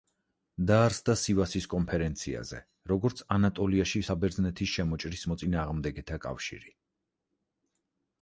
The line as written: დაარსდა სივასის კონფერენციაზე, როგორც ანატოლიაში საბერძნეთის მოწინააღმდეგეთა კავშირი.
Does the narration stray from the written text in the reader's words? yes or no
yes